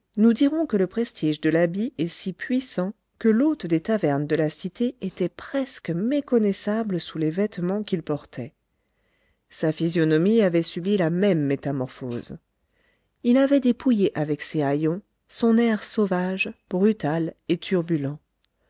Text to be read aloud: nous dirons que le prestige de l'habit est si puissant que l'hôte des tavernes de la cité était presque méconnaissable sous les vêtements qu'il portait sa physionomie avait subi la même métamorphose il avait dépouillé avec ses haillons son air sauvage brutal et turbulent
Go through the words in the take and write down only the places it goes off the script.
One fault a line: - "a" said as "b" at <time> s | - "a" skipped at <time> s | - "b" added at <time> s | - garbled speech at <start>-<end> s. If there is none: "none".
none